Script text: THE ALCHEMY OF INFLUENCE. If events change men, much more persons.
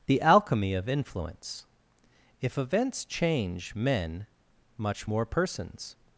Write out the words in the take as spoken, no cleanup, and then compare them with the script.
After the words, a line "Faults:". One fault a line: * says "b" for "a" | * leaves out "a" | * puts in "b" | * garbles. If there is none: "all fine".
THE ALCHEMY OF INFLUENCE. If events change men, much more persons.
Faults:
all fine